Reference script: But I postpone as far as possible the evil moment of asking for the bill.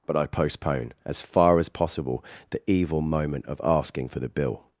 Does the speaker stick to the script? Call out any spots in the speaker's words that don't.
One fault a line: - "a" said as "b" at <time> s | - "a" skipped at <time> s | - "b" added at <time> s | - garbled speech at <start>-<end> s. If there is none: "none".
none